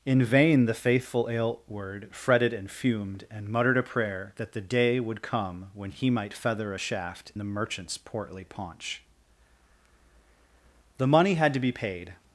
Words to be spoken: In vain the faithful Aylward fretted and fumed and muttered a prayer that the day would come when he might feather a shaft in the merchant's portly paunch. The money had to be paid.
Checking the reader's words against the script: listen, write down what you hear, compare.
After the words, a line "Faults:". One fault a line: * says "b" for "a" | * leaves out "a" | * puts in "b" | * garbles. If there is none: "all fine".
In vain the faithful Aylward fretted and fumed and muttered a prayer that the day would come when he might feather a shaft the merchant's portly paunch. The money had to be paid.
Faults:
* leaves out "in"